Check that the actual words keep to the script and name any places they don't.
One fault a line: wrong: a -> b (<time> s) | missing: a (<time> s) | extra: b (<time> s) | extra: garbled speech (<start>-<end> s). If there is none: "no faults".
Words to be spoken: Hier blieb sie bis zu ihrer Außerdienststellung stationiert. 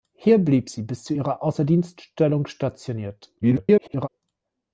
extra: garbled speech (3.4-4.1 s)